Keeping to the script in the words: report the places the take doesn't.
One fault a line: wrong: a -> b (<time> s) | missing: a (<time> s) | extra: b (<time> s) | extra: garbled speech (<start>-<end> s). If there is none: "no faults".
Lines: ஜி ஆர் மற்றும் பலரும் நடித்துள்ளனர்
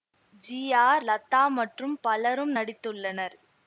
extra: லதா (1.0 s)